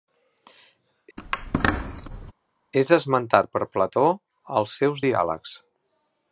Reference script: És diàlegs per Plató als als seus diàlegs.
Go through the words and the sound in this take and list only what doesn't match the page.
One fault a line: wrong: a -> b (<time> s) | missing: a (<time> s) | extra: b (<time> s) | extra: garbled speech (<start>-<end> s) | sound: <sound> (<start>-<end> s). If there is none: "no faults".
sound: squeak (1.2-2.3 s)
wrong: diàlegs -> esmentat (3.0 s)
missing: als (4.8 s)